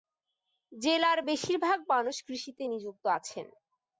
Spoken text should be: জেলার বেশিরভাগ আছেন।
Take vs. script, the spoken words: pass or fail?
fail